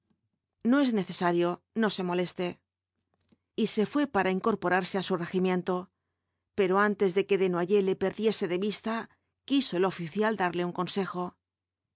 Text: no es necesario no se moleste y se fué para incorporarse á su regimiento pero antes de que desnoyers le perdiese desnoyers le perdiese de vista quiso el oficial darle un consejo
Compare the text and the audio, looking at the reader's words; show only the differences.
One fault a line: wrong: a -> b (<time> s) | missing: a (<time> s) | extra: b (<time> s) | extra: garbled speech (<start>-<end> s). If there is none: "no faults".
missing: desnoyers le perdiese (8.4 s)